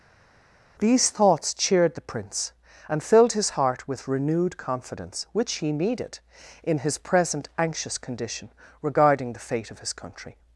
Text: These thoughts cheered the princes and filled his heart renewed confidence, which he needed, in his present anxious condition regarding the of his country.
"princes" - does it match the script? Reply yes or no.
no